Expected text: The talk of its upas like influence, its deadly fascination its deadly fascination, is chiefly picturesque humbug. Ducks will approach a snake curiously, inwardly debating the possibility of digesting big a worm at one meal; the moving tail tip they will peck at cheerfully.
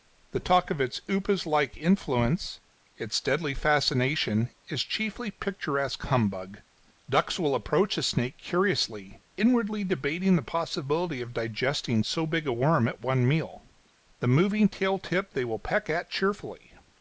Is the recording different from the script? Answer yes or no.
yes